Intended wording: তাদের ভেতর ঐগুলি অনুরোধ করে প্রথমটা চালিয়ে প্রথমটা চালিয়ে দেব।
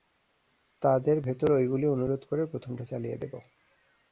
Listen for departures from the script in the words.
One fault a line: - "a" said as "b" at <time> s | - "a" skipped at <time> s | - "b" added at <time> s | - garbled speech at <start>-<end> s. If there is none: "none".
- "প্রথমটা চালিয়ে" skipped at 3.2 s